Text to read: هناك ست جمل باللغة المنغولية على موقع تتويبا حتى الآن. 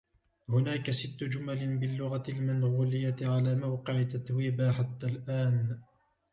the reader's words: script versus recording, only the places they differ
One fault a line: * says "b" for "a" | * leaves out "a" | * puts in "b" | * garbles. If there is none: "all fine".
all fine